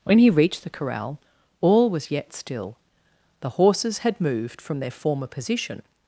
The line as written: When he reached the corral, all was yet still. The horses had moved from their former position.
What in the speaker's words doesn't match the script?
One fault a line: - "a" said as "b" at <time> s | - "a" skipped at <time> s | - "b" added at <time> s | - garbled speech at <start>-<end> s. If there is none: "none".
none